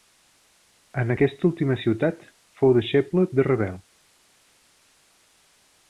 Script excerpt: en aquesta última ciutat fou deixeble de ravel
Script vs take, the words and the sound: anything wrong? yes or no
no